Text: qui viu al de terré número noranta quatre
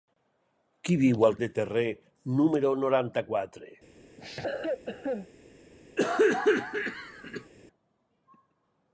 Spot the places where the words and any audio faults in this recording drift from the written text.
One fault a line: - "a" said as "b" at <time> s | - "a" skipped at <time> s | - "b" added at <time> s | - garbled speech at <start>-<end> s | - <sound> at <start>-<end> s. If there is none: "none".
- cough at 4.2-5.3 s
- cough at 6.0-7.5 s